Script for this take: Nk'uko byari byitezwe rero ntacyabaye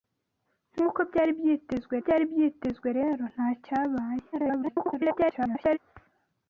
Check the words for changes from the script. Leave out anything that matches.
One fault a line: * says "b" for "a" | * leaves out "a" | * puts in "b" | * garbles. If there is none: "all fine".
* puts in "byari byitezwe"
* garbles